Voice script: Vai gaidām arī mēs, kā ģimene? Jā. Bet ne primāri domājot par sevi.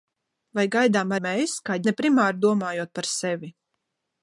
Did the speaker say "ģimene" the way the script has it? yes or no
no